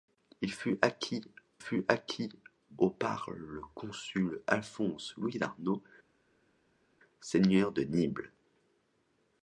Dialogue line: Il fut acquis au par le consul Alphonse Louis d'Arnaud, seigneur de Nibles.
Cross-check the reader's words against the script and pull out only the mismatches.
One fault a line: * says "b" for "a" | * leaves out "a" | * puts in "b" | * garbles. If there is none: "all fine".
* puts in "fut acquis"